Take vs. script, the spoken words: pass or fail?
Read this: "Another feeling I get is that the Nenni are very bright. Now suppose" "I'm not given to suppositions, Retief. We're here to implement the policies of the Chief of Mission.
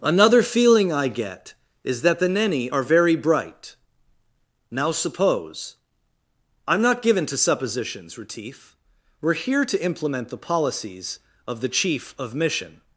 pass